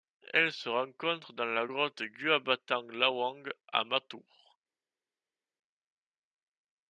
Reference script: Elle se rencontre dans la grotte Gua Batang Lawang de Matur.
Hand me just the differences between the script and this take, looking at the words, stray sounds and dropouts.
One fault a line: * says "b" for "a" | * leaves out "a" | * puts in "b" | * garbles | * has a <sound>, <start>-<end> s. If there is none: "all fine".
* says "à" for "de"